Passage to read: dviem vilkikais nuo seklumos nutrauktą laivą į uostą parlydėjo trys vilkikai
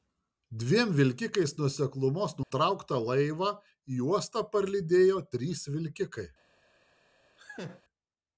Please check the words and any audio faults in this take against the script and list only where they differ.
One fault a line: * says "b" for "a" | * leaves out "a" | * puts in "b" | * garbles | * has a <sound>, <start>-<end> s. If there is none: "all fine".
* has a dropout, 2.4-2.5 s
* has a laugh, 7.4-7.8 s